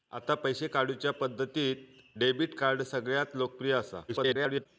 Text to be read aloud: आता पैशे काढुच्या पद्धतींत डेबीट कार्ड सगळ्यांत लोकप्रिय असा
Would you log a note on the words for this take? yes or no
yes